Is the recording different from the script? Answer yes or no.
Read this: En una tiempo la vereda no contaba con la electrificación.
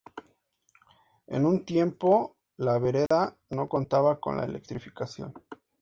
yes